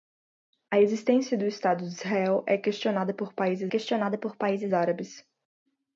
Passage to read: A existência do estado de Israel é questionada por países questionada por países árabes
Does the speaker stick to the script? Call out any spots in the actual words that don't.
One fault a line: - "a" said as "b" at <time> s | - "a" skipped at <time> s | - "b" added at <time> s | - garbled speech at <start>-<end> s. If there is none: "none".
none